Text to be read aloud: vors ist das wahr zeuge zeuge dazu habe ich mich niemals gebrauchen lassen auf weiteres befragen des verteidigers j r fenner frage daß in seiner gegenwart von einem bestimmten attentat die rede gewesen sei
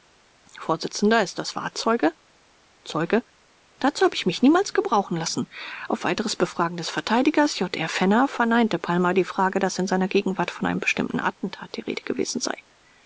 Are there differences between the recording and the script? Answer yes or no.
yes